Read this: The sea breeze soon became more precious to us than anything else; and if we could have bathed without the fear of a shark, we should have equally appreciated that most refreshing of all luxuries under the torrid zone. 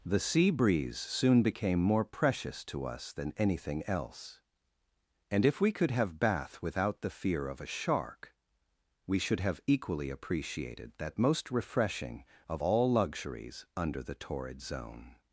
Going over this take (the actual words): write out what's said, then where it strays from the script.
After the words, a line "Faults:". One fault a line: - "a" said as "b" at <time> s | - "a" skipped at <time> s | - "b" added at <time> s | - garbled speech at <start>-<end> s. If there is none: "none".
The sea breeze soon became more precious to us than anything else; and if we could have bath without the fear of a shark, we should have equally appreciated that most refreshing of all luxuries under the torrid zone.
Faults:
- "bathed" said as "bath" at 6.2 s